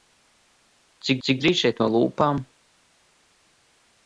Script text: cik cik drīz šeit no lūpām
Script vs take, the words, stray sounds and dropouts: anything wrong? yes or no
no